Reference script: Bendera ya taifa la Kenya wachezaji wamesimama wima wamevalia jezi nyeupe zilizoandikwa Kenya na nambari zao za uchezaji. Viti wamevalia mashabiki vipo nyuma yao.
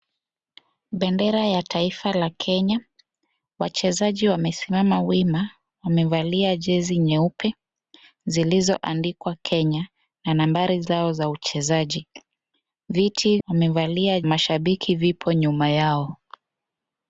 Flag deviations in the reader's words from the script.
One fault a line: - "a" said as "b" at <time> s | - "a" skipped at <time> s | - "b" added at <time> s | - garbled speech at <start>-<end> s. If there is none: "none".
none